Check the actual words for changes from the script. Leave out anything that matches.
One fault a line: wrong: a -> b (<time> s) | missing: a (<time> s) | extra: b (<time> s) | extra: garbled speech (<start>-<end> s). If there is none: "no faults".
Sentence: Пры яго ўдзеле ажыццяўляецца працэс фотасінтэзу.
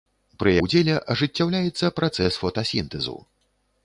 missing: яго (0.5 s)